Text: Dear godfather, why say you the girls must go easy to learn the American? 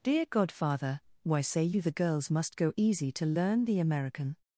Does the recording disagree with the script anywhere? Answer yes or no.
no